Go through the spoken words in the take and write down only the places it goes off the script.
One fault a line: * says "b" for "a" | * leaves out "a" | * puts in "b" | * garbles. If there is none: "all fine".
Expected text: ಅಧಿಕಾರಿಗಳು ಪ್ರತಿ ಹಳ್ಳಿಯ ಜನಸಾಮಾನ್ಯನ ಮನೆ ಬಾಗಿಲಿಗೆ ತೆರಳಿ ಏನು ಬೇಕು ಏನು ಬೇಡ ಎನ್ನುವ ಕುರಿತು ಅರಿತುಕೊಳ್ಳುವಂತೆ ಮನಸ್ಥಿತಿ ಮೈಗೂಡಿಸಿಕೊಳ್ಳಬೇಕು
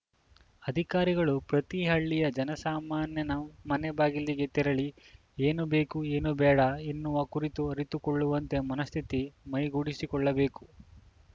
all fine